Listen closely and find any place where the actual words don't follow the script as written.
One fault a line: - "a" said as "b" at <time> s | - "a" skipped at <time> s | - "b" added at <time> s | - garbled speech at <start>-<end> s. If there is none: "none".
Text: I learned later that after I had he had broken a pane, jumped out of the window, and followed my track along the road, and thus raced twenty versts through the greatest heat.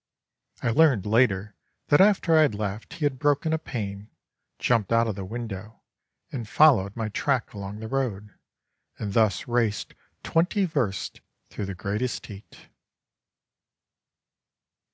- "left" added at 2.5 s